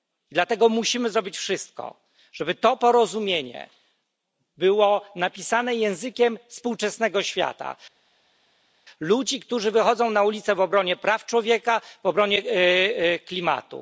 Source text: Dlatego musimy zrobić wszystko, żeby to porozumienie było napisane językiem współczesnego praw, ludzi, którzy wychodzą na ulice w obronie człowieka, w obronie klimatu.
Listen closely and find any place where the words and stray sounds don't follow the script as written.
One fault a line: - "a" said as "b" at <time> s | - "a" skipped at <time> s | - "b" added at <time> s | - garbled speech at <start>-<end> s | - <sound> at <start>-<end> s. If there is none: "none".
- "praw" said as "świata" at 7.2 s
- "praw" added at 11.0 s